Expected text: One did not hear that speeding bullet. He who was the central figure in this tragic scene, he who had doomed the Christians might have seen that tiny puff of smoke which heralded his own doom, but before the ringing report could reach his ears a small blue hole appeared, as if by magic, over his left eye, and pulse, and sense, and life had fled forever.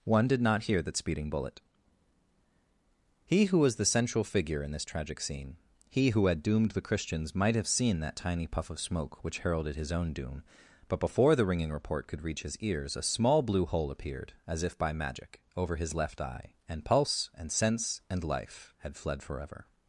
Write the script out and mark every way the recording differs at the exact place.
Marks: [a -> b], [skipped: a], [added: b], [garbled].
One did not hear that speeding bullet. He who was the central figure in this tragic scene, he who had doomed the Christians might have seen that tiny puff of smoke which heralded his own doom, but before the ringing report could reach his ears a small blue hole appeared, as if by magic, over his left eye, and pulse, and sense, and life had fled forever.